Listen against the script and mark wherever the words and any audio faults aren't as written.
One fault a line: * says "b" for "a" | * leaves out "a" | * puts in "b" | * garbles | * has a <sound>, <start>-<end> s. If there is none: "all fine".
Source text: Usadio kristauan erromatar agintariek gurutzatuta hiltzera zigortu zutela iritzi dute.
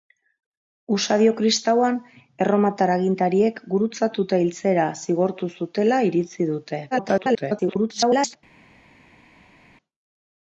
* garbles